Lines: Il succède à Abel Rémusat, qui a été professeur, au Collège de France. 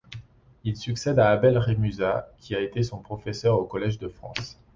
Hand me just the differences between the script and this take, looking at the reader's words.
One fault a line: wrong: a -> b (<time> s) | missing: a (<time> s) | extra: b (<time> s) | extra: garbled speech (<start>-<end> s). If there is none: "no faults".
extra: son (2.8 s)